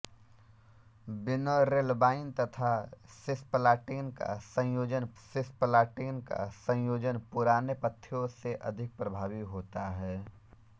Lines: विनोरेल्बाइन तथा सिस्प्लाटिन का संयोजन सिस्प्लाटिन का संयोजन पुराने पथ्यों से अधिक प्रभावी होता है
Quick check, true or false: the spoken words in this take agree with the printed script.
true